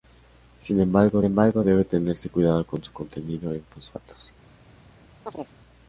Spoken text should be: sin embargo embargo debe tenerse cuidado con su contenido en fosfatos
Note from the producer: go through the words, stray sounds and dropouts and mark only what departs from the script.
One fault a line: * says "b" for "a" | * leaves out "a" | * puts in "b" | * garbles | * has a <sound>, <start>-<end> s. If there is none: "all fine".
* has a chirp, 5.3-5.6 s